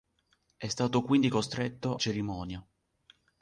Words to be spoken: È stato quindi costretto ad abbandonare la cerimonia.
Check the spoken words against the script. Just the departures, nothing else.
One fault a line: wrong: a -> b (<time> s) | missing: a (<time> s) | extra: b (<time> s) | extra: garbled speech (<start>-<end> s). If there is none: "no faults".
missing: ad abbandonare la (2.0 s)